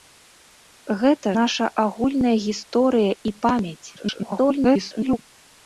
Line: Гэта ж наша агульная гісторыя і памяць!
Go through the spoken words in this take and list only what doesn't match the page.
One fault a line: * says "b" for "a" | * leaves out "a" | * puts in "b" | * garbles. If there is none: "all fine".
* leaves out "ж"
* garbles